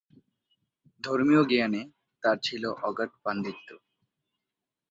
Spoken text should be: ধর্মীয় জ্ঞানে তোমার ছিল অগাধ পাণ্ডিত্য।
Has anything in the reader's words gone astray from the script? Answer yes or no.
yes